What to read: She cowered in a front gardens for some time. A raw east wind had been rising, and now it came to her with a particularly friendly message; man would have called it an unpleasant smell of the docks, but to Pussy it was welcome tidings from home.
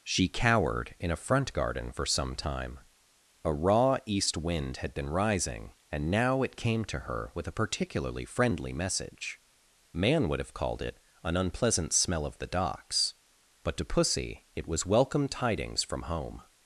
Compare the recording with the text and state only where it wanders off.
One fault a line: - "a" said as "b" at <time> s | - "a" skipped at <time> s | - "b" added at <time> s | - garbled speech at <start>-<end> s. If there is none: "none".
- "gardens" said as "garden" at 1.5 s